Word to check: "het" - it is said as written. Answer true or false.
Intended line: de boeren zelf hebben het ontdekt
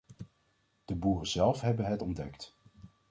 true